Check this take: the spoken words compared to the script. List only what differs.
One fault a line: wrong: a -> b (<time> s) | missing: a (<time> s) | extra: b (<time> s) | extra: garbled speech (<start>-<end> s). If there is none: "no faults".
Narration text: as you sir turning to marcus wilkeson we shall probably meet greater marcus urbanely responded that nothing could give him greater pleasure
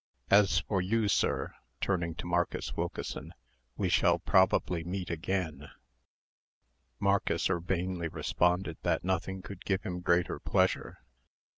extra: for (0.6 s)
wrong: greater -> again (5.1 s)